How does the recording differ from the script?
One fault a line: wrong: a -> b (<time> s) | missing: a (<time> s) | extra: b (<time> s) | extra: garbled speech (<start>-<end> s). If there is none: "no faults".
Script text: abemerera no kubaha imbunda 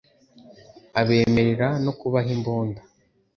no faults